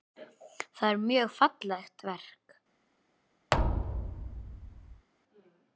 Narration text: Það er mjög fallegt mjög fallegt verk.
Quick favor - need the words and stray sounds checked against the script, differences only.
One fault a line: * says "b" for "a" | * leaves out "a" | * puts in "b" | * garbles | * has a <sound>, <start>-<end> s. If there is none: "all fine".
* leaves out "mjög fallegt"
* has a thud, 3.5-5.1 s